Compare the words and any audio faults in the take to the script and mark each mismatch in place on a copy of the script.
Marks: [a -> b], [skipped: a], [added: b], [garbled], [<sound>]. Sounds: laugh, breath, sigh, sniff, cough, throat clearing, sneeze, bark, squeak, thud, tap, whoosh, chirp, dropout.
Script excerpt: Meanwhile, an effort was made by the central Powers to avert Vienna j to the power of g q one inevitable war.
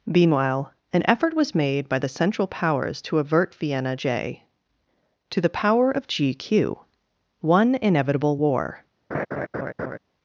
Meanwhile, an effort was made by the central Powers to avert Vienna j to the power of g q one inevitable war. [laugh]